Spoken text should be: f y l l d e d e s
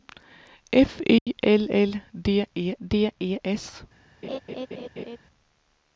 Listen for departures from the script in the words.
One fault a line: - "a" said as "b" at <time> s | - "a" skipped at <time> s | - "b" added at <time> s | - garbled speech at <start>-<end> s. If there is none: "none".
none